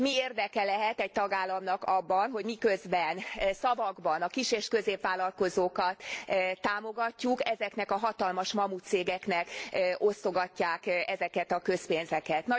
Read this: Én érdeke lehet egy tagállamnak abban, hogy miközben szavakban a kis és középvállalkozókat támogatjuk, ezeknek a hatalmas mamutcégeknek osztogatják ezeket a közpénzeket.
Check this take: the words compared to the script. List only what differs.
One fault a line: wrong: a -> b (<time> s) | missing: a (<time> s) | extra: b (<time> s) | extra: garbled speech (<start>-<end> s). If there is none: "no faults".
wrong: Én -> Mi (0.0 s)